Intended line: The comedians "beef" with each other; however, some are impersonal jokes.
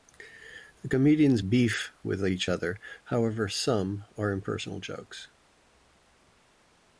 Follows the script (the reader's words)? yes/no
yes